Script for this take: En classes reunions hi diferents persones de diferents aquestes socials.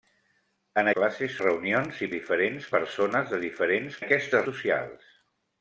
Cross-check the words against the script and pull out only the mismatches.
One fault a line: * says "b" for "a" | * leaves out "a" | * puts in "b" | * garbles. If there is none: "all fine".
all fine